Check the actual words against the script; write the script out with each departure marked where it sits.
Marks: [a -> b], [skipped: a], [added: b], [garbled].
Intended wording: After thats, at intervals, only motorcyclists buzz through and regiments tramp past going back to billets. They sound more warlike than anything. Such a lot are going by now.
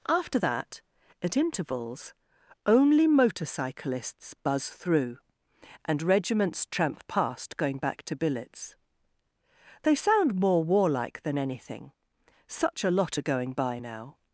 After [thats, -> that] at intervals, only motorcyclists buzz through and regiments tramp past going back to billets. They sound more warlike than anything. Such a lot are going by now.